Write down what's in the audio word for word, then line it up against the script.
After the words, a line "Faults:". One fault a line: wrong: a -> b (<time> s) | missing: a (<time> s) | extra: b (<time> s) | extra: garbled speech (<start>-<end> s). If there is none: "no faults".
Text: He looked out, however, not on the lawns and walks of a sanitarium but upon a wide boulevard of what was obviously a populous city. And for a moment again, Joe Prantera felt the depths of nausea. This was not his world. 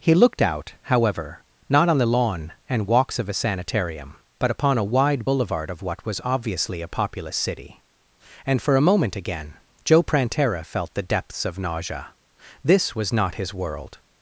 He looked out, however, not on the lawn and walks of a sanitarium but upon a wide boulevard of what was obviously a populous city. And for a moment again, Joe Prantera felt the depths of nausea. This was not his world.
Faults:
wrong: lawns -> lawn (2.0 s)